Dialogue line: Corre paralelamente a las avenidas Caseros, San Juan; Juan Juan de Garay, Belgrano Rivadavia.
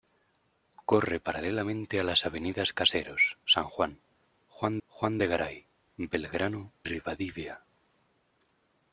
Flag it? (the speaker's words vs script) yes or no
no